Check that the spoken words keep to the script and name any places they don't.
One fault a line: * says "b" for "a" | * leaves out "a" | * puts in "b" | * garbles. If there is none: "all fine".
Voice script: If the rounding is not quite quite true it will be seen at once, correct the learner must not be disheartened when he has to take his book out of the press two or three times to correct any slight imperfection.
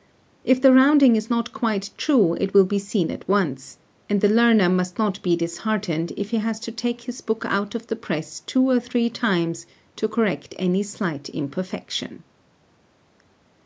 * leaves out "quite"
* says "and" for "correct"
* says "if" for "when"